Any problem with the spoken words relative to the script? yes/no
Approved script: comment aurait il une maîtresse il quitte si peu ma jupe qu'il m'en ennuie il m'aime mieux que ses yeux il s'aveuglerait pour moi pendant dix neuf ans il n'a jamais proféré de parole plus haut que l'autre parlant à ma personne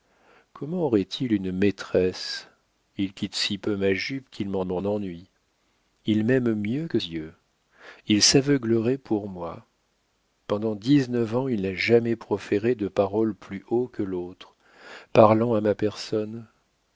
yes